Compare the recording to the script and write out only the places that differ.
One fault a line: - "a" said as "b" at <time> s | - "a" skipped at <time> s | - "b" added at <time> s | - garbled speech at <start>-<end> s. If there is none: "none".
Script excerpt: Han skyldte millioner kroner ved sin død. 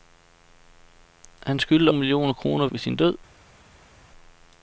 none